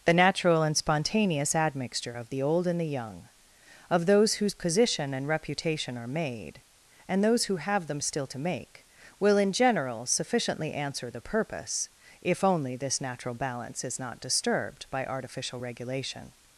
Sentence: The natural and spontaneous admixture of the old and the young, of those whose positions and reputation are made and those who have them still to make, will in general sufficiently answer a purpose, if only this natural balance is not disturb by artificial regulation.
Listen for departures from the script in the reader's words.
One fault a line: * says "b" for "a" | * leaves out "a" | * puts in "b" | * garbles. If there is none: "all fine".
* says "position" for "positions"
* says "the" for "a"
* says "disturbed" for "disturb"